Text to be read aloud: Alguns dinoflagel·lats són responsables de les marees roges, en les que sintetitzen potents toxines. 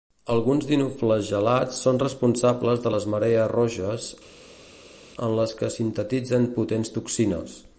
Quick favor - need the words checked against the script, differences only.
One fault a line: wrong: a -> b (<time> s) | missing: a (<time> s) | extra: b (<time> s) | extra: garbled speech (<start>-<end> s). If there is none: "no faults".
no faults